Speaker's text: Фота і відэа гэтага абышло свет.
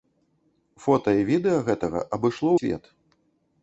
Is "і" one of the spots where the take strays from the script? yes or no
no